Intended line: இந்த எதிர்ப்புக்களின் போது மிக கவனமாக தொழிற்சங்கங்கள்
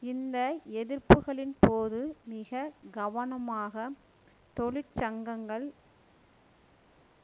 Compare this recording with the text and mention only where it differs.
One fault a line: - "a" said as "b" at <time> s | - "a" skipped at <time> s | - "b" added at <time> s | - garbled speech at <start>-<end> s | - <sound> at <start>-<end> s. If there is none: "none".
none